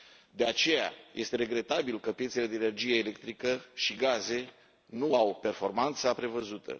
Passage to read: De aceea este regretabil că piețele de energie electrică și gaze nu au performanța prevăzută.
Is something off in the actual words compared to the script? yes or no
no